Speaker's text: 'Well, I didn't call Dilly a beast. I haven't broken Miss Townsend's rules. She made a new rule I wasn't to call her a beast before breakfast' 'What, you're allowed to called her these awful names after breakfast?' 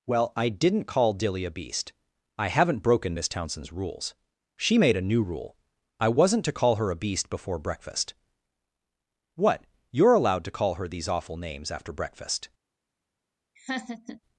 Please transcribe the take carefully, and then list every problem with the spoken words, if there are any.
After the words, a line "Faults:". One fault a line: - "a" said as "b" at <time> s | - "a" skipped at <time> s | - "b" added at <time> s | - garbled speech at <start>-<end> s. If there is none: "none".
'Well, I didn't call Dilly a beast. I haven't broken Miss Townsend's rules. She made a new rule I wasn't to call her a beast before breakfast' 'What, you're allowed to call her these awful names after breakfast?'
Faults:
- "called" said as "call" at 10.5 s